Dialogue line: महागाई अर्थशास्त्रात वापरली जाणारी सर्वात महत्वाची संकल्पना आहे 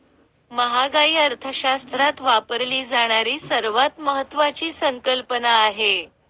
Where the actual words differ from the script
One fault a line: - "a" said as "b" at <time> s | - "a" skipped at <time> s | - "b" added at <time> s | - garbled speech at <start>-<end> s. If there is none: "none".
none